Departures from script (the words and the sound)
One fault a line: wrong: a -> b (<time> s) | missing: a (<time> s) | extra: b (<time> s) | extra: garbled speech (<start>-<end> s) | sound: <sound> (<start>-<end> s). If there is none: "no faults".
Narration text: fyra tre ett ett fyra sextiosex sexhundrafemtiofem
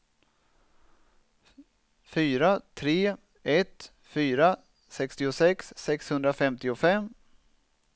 missing: ett (3.9 s)